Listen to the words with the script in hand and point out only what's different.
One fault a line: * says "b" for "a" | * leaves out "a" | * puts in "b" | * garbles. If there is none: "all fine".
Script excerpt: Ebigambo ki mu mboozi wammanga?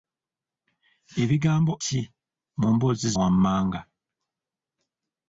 all fine